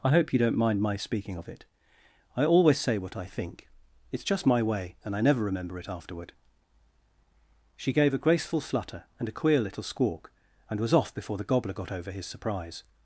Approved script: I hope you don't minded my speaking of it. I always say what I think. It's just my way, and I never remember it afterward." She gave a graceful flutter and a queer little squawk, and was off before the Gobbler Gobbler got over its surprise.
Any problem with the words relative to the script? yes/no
yes